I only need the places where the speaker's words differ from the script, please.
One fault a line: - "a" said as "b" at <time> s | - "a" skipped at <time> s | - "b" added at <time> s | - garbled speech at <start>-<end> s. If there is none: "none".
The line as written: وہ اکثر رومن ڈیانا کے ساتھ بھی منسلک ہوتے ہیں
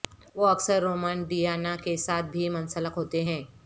none